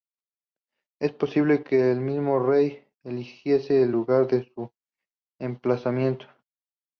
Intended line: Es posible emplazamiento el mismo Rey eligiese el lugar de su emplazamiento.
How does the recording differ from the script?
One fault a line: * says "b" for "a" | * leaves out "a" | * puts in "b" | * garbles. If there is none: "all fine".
* says "que" for "emplazamiento"